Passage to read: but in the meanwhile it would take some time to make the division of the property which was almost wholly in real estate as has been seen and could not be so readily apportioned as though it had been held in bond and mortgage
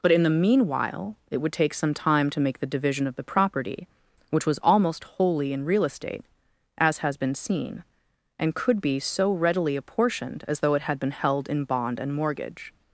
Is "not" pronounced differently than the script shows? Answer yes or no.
yes